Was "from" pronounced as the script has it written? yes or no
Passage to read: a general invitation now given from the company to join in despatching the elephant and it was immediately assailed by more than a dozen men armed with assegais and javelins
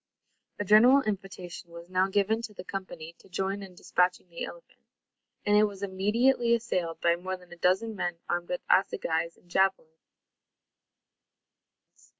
no